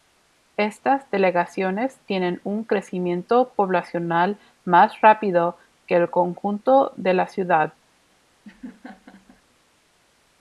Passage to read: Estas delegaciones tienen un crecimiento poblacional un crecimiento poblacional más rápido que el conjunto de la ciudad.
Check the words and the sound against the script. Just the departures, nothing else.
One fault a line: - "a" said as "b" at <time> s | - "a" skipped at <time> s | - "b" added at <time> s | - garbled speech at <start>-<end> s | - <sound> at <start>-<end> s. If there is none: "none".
- "un crecimiento poblacional" skipped at 4.4 s
- laugh at 8.4-9.4 s